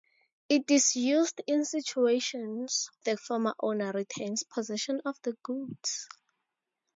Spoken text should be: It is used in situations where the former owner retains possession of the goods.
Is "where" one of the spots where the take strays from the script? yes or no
yes